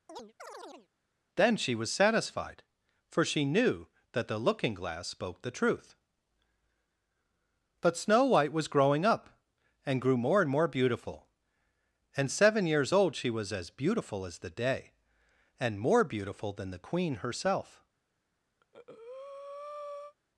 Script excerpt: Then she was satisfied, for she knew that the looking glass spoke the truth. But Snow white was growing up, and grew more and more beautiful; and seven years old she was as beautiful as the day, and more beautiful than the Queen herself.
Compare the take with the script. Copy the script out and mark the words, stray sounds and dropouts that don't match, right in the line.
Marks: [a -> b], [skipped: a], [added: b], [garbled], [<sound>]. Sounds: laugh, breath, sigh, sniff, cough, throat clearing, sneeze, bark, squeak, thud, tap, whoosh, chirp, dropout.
[chirp] Then she was satisfied, for she knew that the looking glass spoke the truth. But Snow white was growing up, and grew more and more beautiful; and seven years old she was as beautiful as the day, and more beautiful than the Queen herself. [breath]